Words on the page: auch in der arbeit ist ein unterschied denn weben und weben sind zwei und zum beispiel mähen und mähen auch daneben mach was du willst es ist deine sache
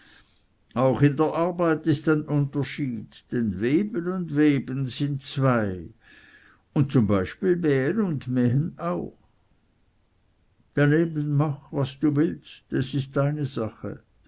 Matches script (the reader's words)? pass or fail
pass